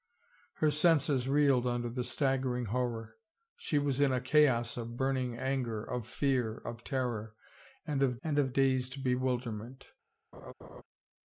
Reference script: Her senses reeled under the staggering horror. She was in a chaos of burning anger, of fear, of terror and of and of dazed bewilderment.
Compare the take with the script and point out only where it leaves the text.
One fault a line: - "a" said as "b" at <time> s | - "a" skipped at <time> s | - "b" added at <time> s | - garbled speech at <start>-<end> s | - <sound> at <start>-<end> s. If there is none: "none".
- laugh at 10.3-10.8 s